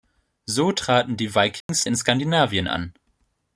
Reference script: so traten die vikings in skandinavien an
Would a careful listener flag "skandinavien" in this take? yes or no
no